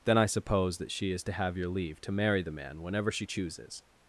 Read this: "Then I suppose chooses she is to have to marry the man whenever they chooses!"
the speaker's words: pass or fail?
fail